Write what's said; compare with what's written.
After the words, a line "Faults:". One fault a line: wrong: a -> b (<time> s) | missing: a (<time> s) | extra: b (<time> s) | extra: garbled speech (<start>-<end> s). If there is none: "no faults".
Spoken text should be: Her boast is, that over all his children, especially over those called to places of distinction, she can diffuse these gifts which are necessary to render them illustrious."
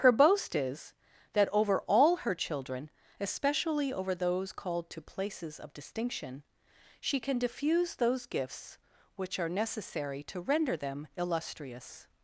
Her boast is, that over all her children, especially over those called to places of distinction, she can diffuse those gifts which are necessary to render them illustrious."
Faults:
wrong: his -> her (2.1 s)
wrong: these -> those (8.0 s)